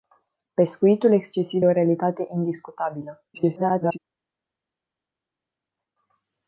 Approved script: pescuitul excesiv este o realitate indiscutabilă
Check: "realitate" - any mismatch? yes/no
no